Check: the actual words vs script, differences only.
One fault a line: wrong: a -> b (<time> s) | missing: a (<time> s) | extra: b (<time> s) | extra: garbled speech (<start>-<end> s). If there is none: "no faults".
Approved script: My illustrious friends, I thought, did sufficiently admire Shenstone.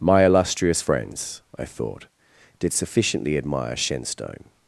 no faults